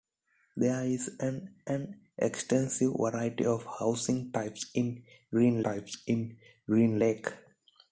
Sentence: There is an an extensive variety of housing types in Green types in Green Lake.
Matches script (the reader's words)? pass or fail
pass